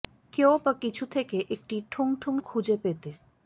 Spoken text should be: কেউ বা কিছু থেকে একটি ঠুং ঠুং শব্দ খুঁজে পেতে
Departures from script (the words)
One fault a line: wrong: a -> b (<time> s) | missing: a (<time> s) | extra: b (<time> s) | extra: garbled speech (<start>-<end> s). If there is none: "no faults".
missing: শব্দ (2.3 s)